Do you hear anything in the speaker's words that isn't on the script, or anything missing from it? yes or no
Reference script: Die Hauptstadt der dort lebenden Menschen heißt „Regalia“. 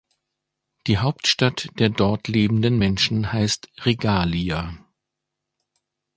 no